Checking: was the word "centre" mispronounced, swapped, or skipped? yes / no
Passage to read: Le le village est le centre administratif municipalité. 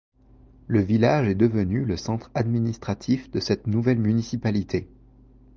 no